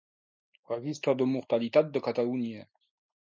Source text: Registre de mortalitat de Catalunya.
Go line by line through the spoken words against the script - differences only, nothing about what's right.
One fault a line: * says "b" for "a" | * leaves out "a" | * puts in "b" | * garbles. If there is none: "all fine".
all fine